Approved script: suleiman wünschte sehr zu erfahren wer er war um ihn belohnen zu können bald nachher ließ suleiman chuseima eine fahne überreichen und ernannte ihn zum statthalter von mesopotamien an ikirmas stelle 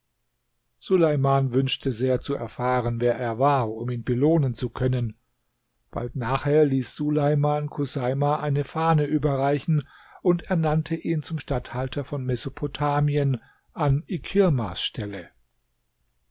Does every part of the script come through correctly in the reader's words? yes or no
yes